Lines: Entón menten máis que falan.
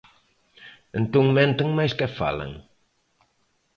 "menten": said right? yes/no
yes